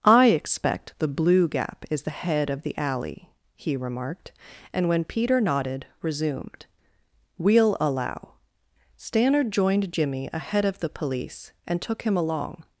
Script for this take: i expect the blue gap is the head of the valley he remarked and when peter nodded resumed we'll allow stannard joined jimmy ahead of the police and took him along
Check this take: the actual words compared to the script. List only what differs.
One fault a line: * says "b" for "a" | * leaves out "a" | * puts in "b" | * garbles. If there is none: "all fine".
* says "alley" for "valley"